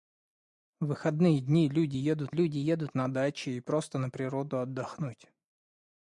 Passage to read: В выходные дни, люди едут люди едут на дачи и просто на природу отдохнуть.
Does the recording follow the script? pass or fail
pass